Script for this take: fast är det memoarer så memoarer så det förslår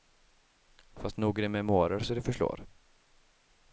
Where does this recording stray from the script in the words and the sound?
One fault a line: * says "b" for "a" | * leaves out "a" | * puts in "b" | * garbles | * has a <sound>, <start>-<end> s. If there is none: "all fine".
* puts in "nog"
* leaves out "memoarer så"